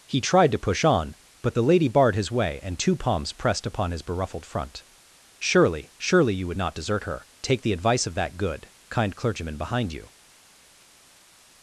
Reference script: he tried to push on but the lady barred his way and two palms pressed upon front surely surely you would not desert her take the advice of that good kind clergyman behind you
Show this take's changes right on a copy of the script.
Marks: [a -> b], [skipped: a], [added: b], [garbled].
he tried to push on but the lady barred his way and two palms pressed upon [added: his beruffled] front surely surely you would not desert her take the advice of that good kind clergyman behind you